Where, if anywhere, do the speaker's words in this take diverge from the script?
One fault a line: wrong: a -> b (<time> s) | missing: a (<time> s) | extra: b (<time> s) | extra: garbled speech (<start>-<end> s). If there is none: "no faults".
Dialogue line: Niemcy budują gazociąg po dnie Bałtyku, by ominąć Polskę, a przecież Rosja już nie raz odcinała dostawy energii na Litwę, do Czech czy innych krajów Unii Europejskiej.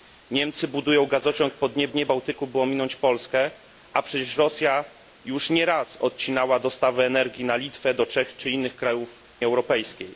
extra: dnie (1.9 s)
missing: Unii (9.2 s)